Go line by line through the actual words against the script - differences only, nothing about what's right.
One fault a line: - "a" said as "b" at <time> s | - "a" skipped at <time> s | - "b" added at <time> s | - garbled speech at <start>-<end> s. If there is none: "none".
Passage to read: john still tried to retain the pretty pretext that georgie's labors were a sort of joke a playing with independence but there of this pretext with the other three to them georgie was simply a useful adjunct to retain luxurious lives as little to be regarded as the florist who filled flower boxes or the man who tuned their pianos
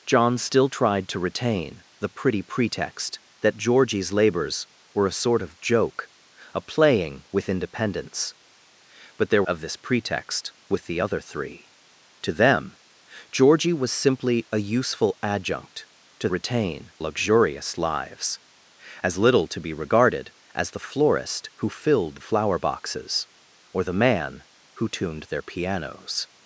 none